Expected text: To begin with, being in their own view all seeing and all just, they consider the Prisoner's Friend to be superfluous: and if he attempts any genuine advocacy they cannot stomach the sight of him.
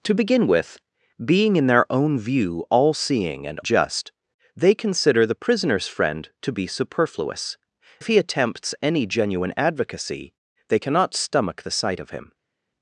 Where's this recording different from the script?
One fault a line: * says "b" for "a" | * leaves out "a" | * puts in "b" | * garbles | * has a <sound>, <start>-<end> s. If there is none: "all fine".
* leaves out "all"
* leaves out "and"